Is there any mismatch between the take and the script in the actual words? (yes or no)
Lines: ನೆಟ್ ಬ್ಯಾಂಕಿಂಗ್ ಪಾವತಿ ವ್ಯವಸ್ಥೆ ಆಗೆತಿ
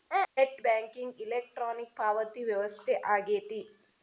yes